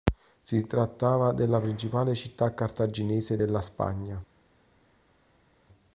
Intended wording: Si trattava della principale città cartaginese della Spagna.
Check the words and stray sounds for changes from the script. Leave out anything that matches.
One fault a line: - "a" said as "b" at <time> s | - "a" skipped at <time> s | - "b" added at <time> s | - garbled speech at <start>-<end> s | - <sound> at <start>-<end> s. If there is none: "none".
none